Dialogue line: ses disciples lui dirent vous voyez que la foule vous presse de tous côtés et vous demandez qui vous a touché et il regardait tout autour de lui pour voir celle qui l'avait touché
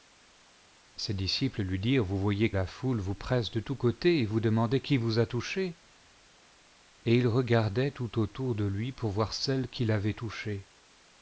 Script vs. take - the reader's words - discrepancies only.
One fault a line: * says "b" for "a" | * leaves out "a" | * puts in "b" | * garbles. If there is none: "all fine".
* leaves out "que"